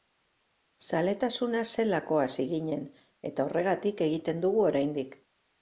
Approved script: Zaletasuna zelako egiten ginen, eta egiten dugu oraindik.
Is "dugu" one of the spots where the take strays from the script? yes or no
no